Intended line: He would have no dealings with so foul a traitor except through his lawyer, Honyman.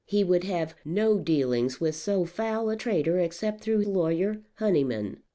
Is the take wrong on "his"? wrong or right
wrong